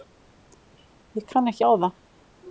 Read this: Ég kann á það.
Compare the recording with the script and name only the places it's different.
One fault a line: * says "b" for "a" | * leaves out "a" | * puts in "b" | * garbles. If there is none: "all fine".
* puts in "ekki"